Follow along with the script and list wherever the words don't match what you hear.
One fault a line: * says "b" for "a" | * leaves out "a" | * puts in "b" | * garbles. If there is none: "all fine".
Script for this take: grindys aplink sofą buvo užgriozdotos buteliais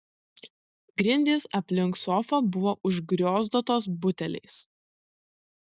all fine